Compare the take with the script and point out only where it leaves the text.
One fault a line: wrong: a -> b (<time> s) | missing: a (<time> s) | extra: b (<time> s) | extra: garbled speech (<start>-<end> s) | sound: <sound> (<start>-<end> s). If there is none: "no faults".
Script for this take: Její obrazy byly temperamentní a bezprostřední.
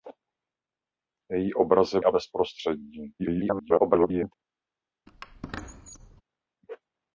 missing: byly temperamentní (2.0 s)
extra: garbled speech (3.2-4.3 s)
sound: squeak (5.1-6.2 s)